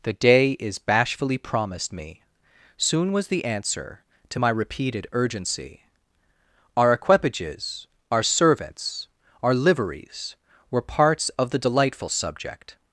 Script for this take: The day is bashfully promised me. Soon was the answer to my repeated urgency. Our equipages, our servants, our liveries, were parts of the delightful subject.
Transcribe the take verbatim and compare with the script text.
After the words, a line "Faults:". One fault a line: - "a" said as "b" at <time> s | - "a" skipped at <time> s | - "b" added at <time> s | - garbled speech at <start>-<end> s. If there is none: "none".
The day is bashfully promised me. Soon was the answer to my repeated urgency. Our equipages, our servants, our liveries, were parts of the delightful subject.
Faults:
none